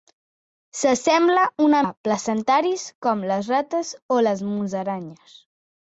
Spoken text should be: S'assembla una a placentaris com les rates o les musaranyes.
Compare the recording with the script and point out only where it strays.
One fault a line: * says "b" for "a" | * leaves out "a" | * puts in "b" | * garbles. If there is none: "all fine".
all fine